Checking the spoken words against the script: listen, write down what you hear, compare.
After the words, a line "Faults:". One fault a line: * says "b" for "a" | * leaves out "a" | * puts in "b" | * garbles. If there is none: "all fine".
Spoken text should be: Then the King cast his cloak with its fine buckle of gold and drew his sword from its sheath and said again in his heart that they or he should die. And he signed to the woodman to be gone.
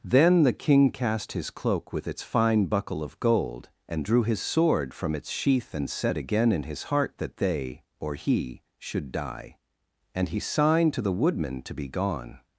Then the King cast his cloak with its fine buckle of gold and drew his sword from its sheath and said again in his heart that they or he should die. And he signed to the woodman to be gone.
Faults:
all fine